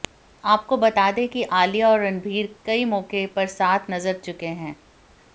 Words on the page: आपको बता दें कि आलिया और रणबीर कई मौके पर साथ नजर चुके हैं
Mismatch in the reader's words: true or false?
false